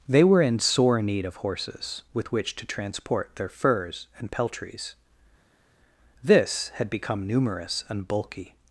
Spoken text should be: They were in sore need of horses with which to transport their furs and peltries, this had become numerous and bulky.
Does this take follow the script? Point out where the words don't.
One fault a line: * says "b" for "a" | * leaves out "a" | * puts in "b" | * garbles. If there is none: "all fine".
all fine